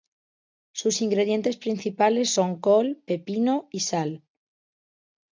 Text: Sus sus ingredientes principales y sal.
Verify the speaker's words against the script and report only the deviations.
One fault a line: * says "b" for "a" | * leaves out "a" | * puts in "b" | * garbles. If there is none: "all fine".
* leaves out "sus"
* puts in "son col pepino"